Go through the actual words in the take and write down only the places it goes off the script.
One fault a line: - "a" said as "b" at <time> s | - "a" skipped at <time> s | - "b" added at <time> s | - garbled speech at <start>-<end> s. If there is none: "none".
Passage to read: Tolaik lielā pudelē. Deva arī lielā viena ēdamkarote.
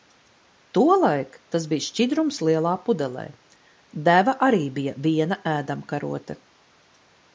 - "tas bija šķidrums" added at 1.6 s
- "lielā" said as "bija" at 4.8 s